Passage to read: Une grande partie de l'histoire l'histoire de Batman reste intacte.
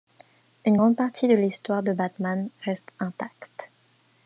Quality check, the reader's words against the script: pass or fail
fail